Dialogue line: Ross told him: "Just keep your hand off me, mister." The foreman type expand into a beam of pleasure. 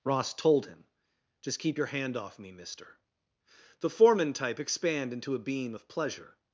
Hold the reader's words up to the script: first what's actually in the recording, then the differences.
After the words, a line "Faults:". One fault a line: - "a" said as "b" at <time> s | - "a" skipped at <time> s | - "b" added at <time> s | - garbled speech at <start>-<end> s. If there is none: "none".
Ross told him: "Just keep your hand off me, mister." The foreman type expand into a beam of pleasure.
Faults:
none